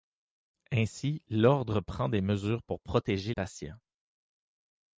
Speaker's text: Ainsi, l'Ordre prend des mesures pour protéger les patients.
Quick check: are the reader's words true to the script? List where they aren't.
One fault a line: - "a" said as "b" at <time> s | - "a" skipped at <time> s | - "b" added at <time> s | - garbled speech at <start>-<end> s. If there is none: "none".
- "les" skipped at 3.4 s